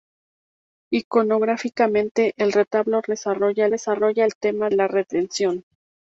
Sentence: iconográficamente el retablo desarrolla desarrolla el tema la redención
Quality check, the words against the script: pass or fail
pass